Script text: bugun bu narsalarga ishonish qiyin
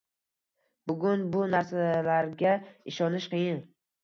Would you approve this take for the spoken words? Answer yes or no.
yes